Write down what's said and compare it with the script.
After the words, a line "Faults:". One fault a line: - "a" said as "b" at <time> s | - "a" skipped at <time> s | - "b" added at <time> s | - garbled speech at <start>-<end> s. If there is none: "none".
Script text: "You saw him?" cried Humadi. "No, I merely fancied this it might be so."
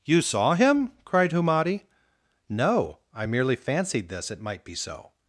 "You saw him?" cried Humadi. "No, I merely fancied this it might be so."
Faults:
none